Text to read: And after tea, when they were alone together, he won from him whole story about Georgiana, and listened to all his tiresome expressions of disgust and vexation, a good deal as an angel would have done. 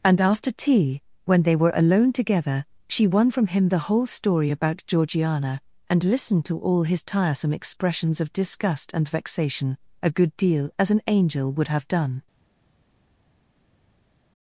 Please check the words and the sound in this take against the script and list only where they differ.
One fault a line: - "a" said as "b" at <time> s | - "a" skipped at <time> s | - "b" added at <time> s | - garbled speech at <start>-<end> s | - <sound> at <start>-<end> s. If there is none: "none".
- "he" said as "she" at 2.9 s
- "the" added at 3.7 s